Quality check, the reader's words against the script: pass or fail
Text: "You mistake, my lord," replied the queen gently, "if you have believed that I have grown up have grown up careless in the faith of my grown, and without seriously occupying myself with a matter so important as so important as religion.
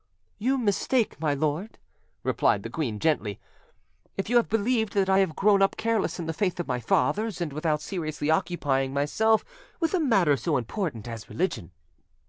fail